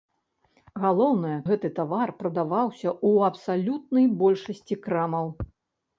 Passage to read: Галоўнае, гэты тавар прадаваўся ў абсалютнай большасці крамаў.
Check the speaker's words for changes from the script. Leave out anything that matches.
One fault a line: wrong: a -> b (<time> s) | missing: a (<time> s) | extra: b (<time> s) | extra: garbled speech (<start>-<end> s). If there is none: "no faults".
no faults